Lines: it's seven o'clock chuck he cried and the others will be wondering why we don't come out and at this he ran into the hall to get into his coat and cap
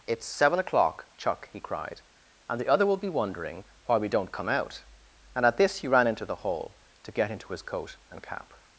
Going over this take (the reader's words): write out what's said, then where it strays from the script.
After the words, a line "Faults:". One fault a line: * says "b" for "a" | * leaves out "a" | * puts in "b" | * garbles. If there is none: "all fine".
it's seven o'clock chuck he cried and the other will be wondering why we don't come out and at this he ran into the hall to get into his coat and cap
Faults:
* says "other" for "others"